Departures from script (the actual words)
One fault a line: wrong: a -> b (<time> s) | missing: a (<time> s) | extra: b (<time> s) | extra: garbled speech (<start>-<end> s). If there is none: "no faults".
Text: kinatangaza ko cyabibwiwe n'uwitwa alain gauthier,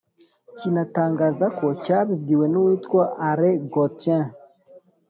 no faults